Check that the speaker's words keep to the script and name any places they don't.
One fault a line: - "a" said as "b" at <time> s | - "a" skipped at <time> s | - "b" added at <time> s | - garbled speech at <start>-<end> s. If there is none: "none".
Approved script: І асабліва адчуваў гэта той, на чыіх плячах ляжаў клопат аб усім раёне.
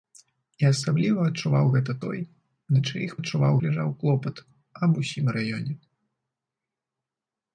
- "плячах" said as "адчуваў" at 3.2 s